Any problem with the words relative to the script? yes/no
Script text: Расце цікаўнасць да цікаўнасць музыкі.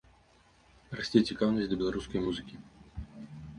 yes